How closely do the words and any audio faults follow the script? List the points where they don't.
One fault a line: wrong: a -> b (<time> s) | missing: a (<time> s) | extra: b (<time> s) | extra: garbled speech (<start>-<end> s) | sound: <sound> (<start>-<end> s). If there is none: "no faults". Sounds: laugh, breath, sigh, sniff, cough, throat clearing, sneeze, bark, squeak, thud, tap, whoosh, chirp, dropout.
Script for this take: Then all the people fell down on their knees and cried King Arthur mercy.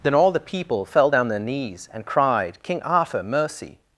missing: on (1.3 s)